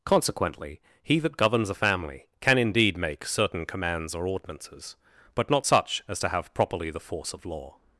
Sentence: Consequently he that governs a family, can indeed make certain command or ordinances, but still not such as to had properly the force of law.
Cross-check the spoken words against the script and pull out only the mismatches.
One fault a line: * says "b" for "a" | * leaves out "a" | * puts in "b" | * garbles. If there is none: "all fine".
* says "commands" for "command"
* leaves out "still"
* says "have" for "had"